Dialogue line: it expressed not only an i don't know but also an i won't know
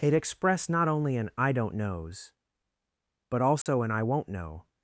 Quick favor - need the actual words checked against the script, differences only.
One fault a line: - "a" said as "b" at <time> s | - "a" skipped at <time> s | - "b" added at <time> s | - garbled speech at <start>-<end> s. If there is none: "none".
- "know" said as "knows" at 1.7 s